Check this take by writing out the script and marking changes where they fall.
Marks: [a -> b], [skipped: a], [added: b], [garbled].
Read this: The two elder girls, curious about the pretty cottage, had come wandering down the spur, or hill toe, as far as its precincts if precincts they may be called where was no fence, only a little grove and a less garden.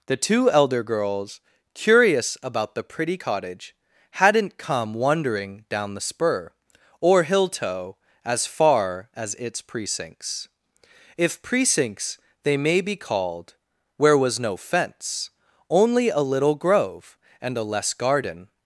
The two elder girls, curious about the pretty cottage, [had -> hadn't] come wandering down the spur, or hill toe, as far as its precincts if precincts they may be called where was no fence, only a little grove and a less garden.